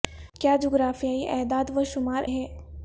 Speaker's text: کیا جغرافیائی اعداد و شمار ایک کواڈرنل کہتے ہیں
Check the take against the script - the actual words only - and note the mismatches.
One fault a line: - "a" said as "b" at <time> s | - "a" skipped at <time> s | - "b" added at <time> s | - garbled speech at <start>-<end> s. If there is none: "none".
- "ایک کواڈرنل کہتے" skipped at 2.2 s